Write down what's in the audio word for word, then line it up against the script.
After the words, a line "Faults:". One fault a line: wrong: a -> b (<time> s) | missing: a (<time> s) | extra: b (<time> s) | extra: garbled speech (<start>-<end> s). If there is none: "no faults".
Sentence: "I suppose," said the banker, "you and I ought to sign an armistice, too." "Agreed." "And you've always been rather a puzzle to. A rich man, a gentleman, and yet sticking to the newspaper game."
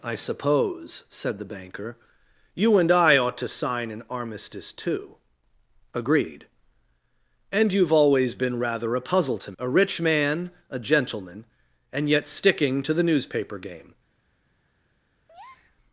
"I suppose," said the banker, "you and I ought to sign an armistice, too." "Agreed." "And you've always been rather a puzzle to. A rich man, a gentleman, and yet sticking to the newspaper game."
Faults:
no faults